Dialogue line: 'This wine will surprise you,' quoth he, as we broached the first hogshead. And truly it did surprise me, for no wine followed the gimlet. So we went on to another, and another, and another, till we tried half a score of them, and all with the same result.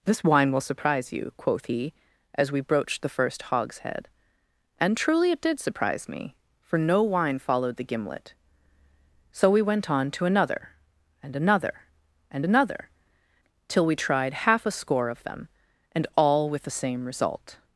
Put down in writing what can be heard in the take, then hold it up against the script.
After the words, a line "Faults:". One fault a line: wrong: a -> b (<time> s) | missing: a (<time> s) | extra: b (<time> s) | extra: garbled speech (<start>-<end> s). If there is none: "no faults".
'This wine will surprise you,' quoth he, as we broached the first hogshead. And truly it did surprise me, for no wine followed the gimlet. So we went on to another, and another, and another, till we tried half a score of them, and all with the same result.
Faults:
no faults